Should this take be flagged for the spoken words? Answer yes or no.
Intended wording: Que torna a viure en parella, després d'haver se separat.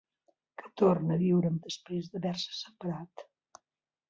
yes